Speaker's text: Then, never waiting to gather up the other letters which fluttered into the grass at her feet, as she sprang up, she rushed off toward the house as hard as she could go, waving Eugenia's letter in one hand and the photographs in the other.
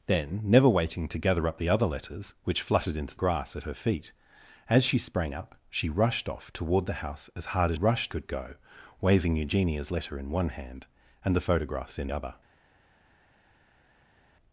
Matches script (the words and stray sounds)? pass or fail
fail